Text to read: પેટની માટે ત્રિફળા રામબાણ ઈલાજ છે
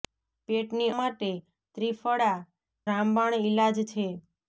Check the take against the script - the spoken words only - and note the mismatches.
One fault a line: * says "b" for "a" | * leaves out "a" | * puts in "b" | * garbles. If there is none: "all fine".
all fine